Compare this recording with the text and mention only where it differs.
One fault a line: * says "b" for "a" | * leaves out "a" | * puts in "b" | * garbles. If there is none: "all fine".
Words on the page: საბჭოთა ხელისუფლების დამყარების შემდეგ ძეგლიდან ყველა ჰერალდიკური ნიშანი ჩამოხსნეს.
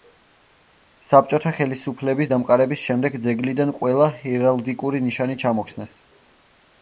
all fine